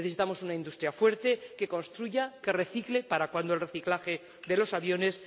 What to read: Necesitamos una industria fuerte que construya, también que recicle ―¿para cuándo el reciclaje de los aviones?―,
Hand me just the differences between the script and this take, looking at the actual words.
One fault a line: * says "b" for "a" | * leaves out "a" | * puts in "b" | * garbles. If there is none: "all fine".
* leaves out "también"